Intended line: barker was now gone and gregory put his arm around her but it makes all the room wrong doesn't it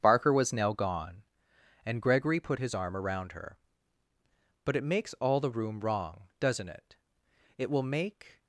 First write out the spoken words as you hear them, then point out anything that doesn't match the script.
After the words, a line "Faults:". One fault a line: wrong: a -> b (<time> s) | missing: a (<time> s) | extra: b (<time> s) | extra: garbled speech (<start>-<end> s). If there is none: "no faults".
barker was now gone and gregory put his arm around her but it makes all the room wrong doesn't it it will make
Faults:
extra: it will make (7.6 s)